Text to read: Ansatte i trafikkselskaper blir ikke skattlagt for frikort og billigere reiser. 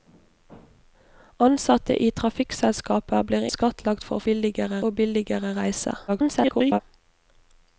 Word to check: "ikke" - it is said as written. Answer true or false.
false